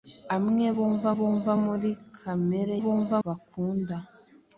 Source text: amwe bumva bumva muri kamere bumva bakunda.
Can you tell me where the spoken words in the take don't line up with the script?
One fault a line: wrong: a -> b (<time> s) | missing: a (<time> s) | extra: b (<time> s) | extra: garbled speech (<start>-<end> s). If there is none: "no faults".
no faults